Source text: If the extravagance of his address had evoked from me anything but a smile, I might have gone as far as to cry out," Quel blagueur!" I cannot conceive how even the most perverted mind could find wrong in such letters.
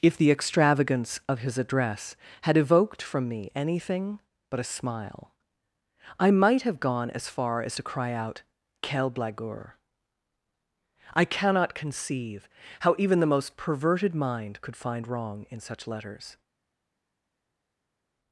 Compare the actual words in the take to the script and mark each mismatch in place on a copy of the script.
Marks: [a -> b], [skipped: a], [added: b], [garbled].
If the extravagance of his address had evoked from me anything but a smile, I might have gone as far as to cry out," Quel blagueur!" I cannot conceive how even the most perverted mind could find wrong in such letters.